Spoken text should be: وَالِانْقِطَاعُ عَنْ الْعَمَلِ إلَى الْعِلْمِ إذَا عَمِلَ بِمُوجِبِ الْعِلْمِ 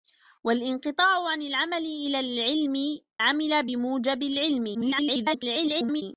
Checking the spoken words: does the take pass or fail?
fail